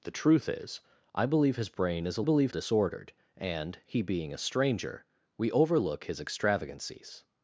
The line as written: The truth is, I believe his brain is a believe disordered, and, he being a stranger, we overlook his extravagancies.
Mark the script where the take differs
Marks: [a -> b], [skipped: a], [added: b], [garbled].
The truth is, I believe his brain is a believe disordered, and, he being a stranger, we overlook his extravagancies.